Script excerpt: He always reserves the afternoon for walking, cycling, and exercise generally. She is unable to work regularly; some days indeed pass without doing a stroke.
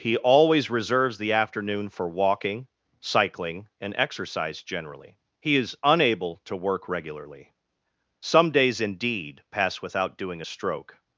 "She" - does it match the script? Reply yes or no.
no